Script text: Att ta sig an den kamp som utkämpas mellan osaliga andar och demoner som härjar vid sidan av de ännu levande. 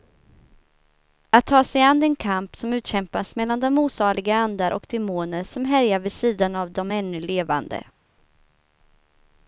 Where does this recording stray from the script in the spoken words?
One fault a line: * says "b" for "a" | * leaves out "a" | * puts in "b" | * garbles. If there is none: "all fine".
* puts in "de"